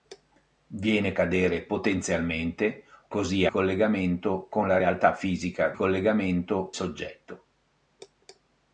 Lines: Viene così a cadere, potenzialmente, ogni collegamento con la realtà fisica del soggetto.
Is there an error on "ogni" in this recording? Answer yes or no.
yes